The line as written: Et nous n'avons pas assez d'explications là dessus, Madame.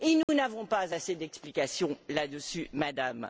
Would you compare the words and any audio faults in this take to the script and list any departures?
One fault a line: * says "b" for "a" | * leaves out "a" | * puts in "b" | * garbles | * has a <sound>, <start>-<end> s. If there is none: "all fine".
* has a dropout, 0.2-0.3 s